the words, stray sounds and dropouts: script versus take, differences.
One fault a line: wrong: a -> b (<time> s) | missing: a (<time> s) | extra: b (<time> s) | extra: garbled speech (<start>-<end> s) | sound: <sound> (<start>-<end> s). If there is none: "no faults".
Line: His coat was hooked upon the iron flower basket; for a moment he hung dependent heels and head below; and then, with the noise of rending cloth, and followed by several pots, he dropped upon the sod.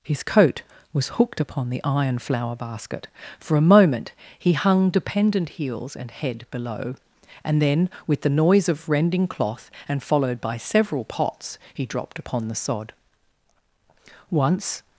extra: Once (14.3 s)